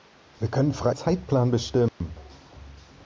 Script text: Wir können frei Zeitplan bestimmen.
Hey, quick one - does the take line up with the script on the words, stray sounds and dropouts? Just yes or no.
no